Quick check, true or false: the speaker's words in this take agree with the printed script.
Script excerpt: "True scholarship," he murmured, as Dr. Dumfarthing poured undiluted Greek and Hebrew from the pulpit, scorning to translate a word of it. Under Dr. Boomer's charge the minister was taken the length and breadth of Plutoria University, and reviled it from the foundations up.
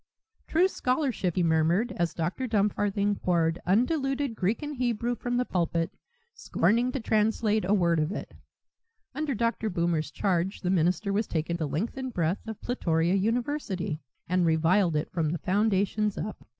true